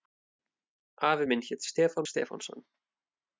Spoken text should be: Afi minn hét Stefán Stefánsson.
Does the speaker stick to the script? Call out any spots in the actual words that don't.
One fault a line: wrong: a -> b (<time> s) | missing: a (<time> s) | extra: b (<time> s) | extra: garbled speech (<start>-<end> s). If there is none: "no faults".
no faults